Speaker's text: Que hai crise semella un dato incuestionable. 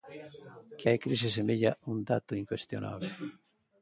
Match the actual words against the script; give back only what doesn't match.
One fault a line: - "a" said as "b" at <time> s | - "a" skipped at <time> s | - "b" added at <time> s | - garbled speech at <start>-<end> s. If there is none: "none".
none